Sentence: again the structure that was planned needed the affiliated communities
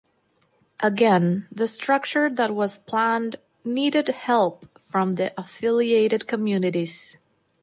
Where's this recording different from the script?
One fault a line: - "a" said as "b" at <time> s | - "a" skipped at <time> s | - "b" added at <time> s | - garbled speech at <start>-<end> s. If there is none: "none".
- "help from" added at 4.1 s